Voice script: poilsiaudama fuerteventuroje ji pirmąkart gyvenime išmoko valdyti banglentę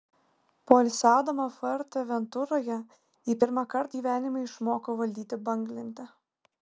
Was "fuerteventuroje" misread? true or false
false